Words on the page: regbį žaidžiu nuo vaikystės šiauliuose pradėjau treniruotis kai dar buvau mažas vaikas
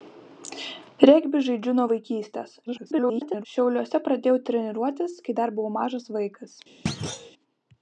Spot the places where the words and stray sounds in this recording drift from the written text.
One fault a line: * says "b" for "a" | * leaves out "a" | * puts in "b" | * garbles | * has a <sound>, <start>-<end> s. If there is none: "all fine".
* garbles
* has a thud, 6.9-7.3 s